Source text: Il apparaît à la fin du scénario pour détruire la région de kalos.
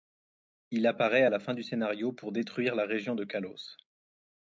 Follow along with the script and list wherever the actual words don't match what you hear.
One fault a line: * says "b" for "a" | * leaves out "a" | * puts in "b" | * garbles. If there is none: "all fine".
all fine